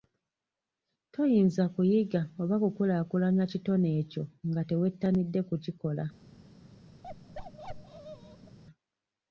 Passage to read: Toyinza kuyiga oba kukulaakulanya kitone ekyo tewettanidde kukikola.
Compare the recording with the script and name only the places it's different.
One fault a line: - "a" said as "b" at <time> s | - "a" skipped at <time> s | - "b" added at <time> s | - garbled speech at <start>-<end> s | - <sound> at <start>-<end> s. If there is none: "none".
- "nga" added at 4.5 s
- bark at 7.0-8.6 s